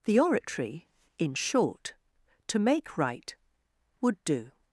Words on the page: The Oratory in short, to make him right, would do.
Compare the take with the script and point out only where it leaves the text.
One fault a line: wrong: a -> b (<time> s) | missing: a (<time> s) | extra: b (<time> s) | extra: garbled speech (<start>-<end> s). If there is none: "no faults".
missing: him (3.0 s)